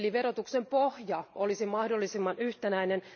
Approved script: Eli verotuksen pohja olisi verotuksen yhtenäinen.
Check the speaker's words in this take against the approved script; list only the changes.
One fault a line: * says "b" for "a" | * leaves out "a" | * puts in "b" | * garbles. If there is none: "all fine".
* says "mahdollisimman" for "verotuksen"